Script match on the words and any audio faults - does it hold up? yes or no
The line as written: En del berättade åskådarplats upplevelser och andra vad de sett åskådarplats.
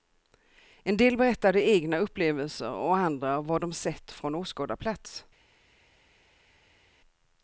no